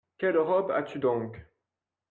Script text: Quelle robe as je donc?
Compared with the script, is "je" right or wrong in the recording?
wrong